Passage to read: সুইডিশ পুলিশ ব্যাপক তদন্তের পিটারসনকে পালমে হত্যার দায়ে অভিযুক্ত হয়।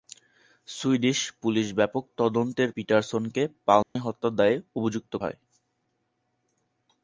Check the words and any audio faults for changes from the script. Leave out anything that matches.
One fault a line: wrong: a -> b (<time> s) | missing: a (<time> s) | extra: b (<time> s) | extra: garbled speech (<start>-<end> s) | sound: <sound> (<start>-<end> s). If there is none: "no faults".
sound: dropout (3.8-4.0 s)